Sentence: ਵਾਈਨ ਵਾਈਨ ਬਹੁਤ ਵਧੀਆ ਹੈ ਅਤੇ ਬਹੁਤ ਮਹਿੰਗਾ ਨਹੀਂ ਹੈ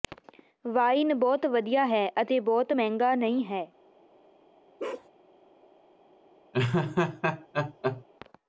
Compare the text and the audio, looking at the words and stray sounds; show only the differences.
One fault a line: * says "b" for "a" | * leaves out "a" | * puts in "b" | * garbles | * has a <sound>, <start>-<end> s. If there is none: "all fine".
* leaves out "ਵਾਈਨ"
* has a bark, 4.8-5.1 s
* has a laugh, 6.5-8.0 s